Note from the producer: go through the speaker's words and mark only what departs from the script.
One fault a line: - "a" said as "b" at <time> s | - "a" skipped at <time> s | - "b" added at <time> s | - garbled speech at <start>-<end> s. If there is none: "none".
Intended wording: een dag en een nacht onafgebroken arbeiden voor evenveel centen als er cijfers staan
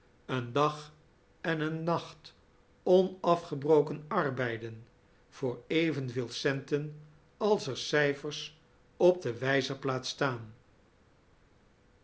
- "op de wijzerplaat" added at 9.0 s